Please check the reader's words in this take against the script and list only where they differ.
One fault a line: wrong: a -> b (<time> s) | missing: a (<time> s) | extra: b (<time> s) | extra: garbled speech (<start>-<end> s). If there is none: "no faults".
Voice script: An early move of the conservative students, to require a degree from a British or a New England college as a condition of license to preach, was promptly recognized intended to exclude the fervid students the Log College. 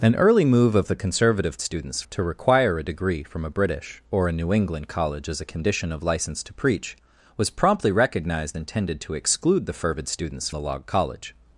no faults